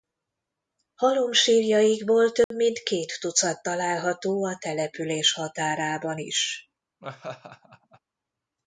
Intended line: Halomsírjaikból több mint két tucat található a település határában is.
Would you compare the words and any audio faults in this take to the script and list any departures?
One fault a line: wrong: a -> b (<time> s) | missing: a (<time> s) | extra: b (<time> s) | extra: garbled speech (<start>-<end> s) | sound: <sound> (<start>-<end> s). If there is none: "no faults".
sound: dropout (2.4-2.5 s)
sound: laugh (7.0-8.0 s)